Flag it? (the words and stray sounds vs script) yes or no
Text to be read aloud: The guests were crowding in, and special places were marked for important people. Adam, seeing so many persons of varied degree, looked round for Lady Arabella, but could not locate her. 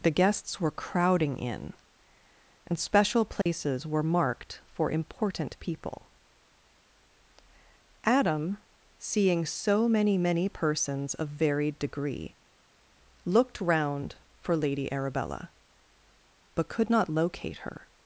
yes